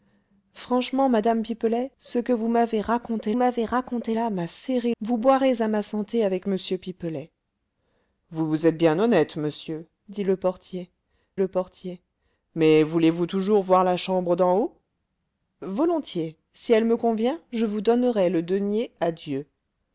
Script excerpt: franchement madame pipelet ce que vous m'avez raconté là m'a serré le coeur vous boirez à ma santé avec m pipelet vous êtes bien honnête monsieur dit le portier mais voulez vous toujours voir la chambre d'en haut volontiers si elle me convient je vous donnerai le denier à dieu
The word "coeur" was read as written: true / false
false